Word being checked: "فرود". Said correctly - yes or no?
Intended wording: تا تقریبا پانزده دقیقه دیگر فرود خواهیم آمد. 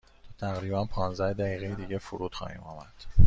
yes